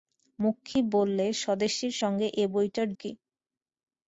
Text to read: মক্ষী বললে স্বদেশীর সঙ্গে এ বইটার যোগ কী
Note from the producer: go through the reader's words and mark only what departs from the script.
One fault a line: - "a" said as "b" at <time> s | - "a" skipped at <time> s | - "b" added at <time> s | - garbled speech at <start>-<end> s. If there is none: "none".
- "যোগ" skipped at 2.9 s